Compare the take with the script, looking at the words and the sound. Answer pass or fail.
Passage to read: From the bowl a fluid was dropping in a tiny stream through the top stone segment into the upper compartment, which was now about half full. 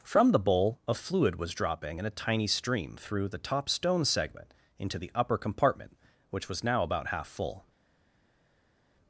pass